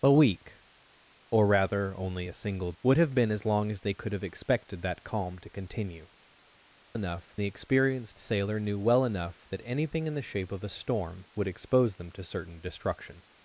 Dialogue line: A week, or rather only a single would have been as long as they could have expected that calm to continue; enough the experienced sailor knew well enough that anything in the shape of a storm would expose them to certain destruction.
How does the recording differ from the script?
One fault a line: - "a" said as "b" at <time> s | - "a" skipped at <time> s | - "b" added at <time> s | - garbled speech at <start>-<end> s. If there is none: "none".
none